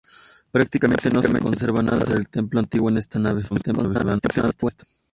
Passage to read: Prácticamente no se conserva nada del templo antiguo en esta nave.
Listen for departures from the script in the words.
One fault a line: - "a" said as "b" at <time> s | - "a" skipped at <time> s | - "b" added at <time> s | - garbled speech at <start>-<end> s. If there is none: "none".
- garbled speech at 3.5-4.8 s